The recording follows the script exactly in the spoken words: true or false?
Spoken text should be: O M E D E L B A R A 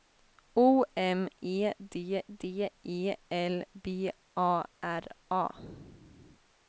false